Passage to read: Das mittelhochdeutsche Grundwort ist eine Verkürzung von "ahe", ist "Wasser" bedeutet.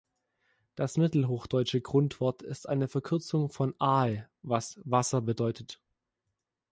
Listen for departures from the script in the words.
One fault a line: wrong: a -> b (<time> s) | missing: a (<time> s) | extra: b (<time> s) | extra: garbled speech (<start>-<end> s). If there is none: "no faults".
wrong: ist -> was (4.4 s)